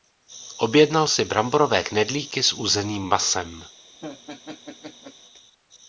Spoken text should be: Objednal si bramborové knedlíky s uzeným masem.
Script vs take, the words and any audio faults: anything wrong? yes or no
yes